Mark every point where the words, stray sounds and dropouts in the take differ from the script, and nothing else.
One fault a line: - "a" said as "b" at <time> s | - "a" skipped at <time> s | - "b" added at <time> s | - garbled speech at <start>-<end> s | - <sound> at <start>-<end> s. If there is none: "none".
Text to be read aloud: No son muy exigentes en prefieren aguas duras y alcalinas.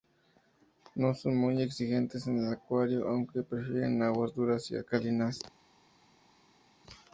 - "el acuario aunque" added at 2.4 s